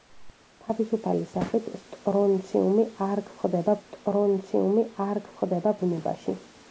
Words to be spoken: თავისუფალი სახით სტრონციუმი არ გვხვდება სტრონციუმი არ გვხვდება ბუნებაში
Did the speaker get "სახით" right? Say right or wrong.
right